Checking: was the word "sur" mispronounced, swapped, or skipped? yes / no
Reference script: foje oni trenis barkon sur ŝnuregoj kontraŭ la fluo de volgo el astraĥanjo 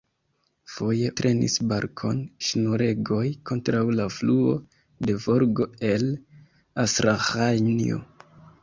yes